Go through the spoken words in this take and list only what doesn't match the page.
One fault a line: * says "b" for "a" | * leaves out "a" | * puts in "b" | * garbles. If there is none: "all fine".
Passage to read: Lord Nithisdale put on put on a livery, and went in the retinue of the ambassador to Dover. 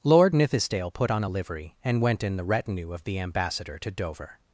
* leaves out "put on"